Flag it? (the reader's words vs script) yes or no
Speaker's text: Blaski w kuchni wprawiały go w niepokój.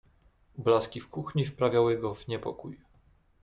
no